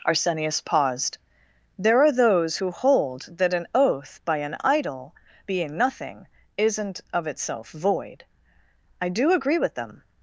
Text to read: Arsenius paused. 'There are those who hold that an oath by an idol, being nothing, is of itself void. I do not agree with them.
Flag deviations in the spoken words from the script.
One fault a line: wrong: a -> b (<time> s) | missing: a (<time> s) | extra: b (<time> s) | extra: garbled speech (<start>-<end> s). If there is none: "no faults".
wrong: is -> isn't (6.6 s)
missing: not (9.3 s)